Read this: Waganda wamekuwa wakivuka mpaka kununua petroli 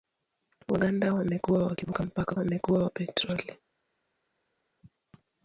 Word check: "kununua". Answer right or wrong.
wrong